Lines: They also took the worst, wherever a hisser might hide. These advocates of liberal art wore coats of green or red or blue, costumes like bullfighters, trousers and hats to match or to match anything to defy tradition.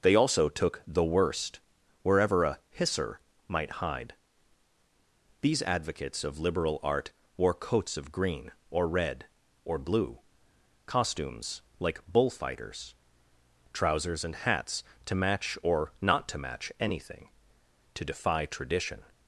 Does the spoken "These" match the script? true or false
true